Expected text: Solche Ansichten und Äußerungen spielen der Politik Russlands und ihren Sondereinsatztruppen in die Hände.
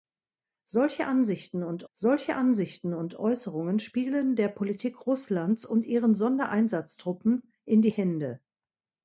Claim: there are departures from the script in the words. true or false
true